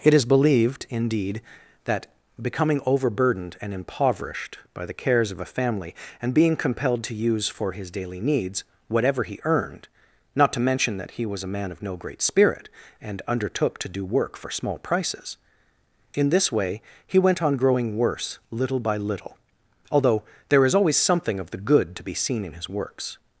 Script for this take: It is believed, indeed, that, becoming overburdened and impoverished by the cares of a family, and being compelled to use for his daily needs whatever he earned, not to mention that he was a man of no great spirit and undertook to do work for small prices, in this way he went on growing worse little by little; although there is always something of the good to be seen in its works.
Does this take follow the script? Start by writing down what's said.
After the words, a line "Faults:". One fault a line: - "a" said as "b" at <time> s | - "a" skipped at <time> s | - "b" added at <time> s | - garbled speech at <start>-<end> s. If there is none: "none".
It is believed, indeed, that, becoming overburdened and impoverished by the cares of a family, and being compelled to use for his daily needs whatever he earned, not to mention that he was a man of no great spirit and undertook to do work for small prices, in this way he went on growing worse little by little; although there is always something of the good to be seen in his works.
Faults:
- "its" said as "his" at 22.5 s